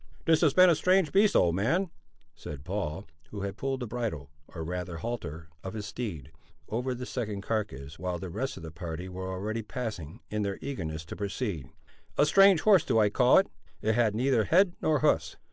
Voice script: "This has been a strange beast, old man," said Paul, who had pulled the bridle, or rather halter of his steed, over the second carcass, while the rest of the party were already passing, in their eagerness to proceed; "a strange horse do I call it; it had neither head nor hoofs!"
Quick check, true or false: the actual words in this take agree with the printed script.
true